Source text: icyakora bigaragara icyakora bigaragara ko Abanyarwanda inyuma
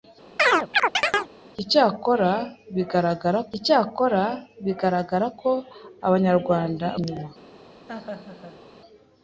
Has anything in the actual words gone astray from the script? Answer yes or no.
no